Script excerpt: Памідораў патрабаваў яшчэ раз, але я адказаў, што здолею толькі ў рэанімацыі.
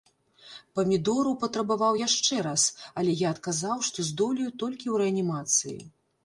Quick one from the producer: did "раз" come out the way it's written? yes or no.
yes